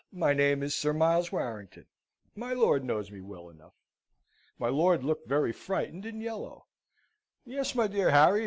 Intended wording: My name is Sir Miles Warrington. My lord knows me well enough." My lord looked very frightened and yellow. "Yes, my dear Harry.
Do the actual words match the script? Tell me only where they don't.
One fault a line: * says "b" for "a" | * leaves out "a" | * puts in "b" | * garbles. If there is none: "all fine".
all fine